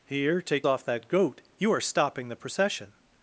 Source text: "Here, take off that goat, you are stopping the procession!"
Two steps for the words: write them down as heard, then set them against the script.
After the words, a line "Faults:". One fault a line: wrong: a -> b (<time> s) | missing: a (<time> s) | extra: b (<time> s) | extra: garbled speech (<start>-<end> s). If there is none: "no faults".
"Here, take off that goat, you are stopping the procession!"
Faults:
no faults